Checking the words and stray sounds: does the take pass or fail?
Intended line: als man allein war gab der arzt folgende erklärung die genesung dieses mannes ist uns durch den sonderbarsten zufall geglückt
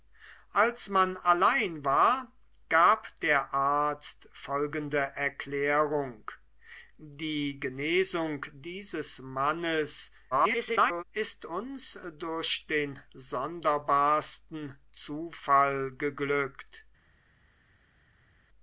fail